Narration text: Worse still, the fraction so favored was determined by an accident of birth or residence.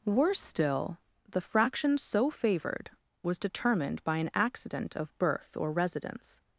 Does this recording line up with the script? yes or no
yes